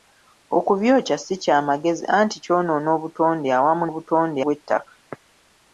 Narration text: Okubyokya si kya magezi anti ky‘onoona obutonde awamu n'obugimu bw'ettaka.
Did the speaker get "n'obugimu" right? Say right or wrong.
wrong